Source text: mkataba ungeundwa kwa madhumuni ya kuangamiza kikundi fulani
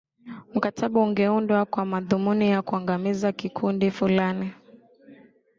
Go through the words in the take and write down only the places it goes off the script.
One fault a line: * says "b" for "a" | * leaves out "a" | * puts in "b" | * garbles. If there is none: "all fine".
all fine